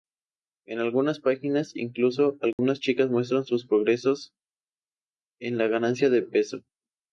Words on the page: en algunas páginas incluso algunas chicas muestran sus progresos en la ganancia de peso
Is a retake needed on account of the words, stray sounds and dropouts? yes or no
yes